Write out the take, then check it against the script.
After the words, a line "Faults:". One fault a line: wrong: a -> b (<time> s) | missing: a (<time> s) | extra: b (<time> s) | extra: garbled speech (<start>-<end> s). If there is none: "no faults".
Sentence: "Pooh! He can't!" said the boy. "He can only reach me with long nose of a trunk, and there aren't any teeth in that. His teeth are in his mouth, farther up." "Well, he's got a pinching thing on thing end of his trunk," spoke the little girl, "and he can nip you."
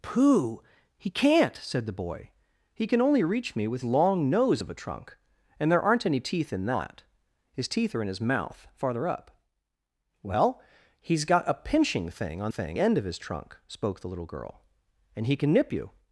"Pooh! He can't!" said the boy. "He can only reach me with long nose of a trunk, and there aren't any teeth in that. His teeth are in his mouth, farther up." "Well, he's got a pinching thing on thing end of his trunk," spoke the little girl, "and he can nip you."
Faults:
no faults